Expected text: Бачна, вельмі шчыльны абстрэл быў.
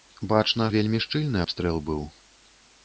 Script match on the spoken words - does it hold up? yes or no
yes